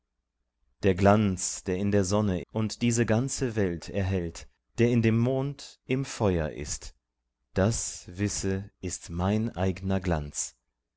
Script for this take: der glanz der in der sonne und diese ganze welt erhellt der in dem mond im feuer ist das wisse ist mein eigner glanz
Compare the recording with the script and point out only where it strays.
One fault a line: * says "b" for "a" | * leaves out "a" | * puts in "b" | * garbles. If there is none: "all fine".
all fine